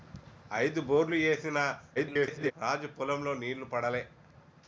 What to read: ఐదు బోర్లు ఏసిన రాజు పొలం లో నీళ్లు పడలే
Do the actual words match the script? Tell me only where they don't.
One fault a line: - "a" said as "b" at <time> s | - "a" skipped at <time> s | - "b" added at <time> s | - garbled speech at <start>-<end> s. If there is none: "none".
- garbled speech at 1.9-2.5 s